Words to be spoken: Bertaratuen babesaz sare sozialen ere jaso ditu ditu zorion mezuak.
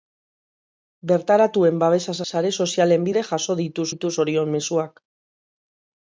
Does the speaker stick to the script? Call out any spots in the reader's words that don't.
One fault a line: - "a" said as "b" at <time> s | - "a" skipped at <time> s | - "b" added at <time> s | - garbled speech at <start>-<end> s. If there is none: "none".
none